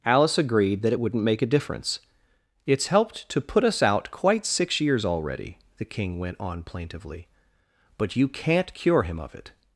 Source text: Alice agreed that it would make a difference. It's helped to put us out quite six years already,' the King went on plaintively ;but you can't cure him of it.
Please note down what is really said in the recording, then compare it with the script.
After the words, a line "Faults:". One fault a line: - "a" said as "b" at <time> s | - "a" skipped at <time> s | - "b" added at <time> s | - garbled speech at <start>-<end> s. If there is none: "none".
Alice agreed that it wouldn't make a difference. It's helped to put us out quite six years already,' the King went on plaintively ;but you can't cure him of it.
Faults:
- "would" said as "wouldn't" at 1.0 s